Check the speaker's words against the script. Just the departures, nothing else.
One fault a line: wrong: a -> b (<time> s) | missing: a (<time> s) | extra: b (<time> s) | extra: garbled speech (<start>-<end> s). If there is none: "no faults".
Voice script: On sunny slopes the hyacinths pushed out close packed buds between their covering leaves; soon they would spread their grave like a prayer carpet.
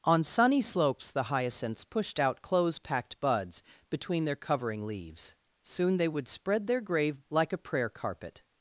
no faults